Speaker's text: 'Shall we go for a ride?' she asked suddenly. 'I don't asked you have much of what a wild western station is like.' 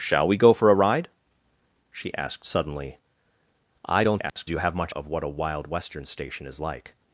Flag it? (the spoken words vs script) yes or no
no